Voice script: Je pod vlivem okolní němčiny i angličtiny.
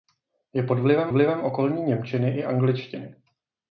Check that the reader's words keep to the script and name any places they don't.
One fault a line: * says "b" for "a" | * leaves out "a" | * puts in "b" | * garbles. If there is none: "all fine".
* puts in "vlivem"